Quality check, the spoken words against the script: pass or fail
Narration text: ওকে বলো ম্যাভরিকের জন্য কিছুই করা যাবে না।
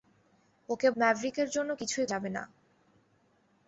fail